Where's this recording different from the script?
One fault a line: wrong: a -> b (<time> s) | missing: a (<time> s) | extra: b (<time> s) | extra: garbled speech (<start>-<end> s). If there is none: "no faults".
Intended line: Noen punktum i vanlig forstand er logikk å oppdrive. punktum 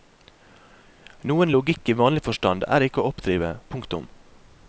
wrong: punktum -> logikk (1.6 s)
wrong: logikk -> ikke (2.9 s)